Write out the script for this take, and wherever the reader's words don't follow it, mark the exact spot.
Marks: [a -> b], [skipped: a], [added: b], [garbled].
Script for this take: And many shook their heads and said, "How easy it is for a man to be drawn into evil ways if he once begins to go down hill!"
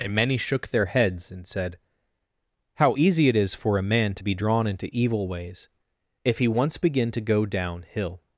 And many shook their heads and said, "How easy it is for a man to be drawn into evil ways if he once [begins -> begin] to go down hill!"